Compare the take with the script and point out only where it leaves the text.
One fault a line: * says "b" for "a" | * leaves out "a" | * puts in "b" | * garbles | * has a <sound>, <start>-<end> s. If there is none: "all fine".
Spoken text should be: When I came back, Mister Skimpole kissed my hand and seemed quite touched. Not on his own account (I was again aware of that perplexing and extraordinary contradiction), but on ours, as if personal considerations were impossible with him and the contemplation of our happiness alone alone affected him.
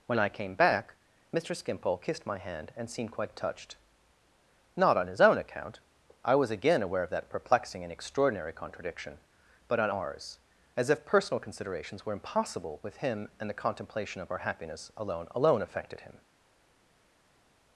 all fine